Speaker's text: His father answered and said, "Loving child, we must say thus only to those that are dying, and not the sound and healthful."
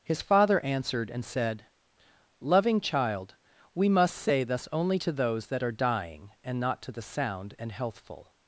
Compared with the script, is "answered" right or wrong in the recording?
right